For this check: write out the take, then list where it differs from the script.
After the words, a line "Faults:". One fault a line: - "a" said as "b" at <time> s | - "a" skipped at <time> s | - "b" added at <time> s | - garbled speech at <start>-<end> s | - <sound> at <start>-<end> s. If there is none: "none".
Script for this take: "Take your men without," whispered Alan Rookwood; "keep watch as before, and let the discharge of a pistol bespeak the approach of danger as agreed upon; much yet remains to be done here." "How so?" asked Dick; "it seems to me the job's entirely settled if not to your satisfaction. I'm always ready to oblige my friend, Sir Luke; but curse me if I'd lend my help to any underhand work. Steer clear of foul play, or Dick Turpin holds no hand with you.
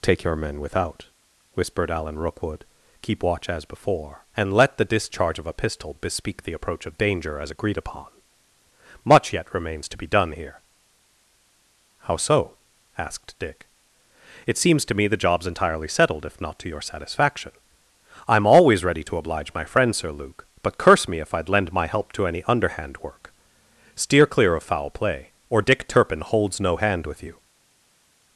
"Take your men without," whispered Alan Rookwood; "keep watch as before, and let the discharge of a pistol bespeak the approach of danger as agreed upon; much yet remains to be done here." "How so?" asked Dick; "it seems to me the job's entirely settled if not to your satisfaction. I'm always ready to oblige my friend, Sir Luke; but curse me if I'd lend my help to any underhand work. Steer clear of foul play, or Dick Turpin holds no hand with you.
Faults:
none